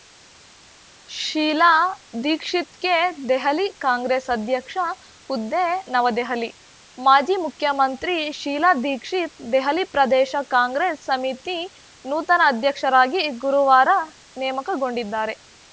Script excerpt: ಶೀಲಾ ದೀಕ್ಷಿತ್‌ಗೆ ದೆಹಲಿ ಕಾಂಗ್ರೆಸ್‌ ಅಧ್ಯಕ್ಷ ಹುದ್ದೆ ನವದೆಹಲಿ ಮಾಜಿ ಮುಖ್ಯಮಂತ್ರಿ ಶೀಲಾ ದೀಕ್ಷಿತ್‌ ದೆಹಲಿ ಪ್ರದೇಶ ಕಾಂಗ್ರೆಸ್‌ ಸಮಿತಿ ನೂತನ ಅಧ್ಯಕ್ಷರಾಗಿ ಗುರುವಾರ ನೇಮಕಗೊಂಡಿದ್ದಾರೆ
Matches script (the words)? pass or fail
pass